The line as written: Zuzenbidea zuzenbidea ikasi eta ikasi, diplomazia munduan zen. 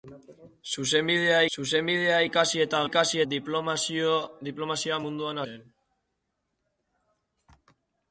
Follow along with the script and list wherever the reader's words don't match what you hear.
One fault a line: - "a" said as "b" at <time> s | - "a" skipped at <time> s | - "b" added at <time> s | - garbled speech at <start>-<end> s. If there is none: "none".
none